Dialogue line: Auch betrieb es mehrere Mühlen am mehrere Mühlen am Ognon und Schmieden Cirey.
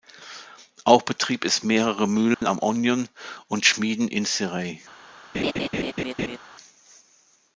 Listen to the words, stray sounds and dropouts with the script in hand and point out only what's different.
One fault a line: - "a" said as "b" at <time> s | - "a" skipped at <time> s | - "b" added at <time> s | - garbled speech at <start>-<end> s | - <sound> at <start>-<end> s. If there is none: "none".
- dropout at 2.3-2.4 s
- "mehrere Mühlen am" skipped at 2.6 s
- "in" added at 4.1 s
- laugh at 5.3-6.4 s